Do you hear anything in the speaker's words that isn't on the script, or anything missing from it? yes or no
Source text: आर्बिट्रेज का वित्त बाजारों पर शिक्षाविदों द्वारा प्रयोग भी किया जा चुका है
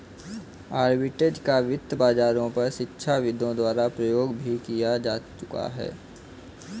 no